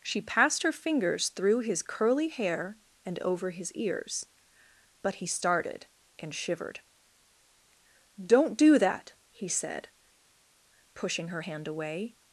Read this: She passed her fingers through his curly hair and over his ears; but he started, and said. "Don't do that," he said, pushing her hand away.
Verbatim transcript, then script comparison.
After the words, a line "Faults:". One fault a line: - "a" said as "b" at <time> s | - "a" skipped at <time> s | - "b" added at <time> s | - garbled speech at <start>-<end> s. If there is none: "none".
She passed her fingers through his curly hair and over his ears; but he started, and shivered. "Don't do that," he said, pushing her hand away.
Faults:
- "said" said as "shivered" at 6.3 s